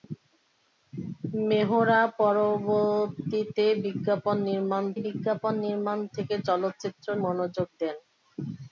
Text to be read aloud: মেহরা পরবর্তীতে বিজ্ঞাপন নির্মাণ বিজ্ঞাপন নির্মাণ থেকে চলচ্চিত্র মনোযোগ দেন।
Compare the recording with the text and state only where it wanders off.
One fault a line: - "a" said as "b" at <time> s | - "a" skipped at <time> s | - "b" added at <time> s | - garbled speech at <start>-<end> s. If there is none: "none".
none